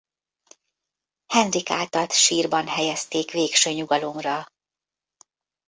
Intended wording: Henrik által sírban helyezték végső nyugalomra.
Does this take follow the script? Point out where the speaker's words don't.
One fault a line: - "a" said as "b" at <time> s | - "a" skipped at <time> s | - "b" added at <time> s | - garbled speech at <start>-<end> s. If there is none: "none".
none